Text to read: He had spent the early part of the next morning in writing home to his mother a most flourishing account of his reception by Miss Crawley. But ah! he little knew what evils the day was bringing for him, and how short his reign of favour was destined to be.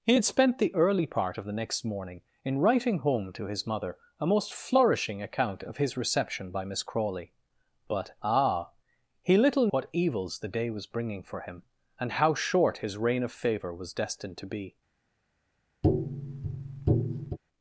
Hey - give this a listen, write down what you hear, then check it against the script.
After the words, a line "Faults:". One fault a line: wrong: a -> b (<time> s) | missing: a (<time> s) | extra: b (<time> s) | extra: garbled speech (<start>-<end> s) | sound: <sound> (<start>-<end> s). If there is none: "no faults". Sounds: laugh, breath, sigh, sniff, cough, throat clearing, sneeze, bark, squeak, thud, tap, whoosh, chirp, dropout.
He had spent the early part of the next morning in writing home to his mother a most flourishing account of his reception by Miss Crawley. But ah! he little what evils the day was bringing for him, and how short his reign of favour was destined to be.
Faults:
missing: knew (9.7 s)
sound: tap (15.8-17.4 s)